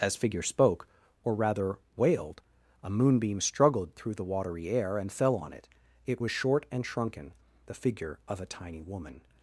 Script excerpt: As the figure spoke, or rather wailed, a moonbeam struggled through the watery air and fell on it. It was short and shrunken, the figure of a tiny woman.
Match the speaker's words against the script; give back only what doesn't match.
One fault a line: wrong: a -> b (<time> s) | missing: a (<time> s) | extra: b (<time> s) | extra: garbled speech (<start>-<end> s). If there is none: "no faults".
missing: the (0.1 s)